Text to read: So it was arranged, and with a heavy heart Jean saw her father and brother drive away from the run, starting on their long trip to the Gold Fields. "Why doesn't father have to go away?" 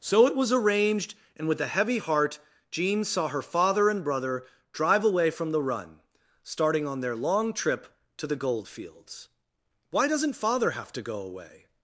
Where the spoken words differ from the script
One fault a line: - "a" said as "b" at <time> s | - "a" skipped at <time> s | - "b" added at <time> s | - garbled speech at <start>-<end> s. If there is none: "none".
none